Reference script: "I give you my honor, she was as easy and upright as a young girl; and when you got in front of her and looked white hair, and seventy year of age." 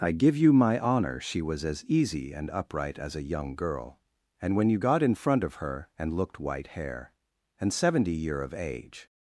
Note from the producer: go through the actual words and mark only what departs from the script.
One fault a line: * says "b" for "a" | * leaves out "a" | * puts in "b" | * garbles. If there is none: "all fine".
all fine